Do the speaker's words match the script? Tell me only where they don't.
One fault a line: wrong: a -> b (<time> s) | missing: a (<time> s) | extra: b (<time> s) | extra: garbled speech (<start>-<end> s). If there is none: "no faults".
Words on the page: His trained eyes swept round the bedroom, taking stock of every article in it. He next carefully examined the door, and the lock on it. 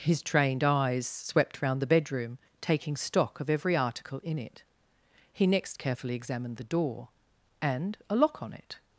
wrong: the -> a (8.1 s)